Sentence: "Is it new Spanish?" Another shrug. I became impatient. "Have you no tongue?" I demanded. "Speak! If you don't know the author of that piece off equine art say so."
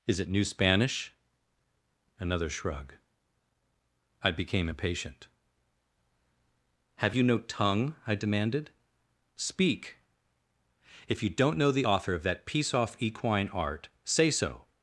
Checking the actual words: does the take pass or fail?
pass